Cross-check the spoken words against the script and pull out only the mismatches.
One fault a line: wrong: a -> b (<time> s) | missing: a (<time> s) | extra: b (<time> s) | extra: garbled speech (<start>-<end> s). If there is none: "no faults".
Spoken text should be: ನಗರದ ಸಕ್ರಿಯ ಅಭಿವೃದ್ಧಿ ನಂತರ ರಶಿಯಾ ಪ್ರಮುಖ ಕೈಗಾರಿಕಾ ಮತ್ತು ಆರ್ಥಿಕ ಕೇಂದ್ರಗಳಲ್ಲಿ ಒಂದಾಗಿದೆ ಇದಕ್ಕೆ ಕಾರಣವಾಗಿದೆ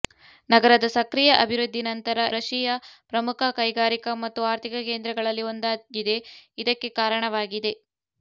no faults